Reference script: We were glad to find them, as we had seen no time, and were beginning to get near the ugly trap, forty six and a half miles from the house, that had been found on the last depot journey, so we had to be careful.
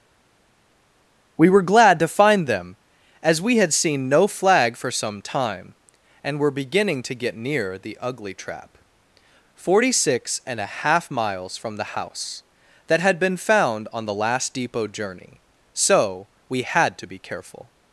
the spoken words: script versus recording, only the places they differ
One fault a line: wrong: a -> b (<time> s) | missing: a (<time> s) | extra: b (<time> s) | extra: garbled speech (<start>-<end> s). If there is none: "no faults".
extra: flag for some (4.3 s)